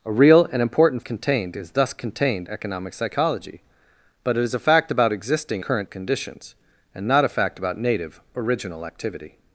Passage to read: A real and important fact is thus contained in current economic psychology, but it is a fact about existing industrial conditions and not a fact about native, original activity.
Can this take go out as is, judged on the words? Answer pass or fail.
fail